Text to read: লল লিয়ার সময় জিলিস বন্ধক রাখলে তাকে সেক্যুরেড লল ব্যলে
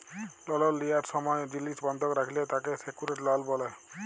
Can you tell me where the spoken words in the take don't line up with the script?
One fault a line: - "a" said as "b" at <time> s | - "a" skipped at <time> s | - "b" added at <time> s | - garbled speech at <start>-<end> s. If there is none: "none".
none